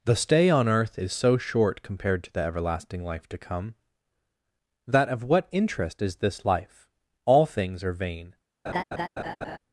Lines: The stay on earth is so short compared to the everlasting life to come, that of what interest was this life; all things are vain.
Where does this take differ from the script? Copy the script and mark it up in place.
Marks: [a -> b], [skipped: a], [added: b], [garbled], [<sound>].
The stay on earth is so short compared to the everlasting life to come, that of what interest [was -> is] this life; all things are vain. [laugh]